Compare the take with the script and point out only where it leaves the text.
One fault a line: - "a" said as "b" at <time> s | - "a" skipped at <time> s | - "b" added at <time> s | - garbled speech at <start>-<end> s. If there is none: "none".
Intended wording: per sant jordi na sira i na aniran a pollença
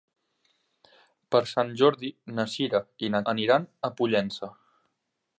none